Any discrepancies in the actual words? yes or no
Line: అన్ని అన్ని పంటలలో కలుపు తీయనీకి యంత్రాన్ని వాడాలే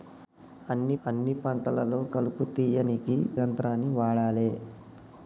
no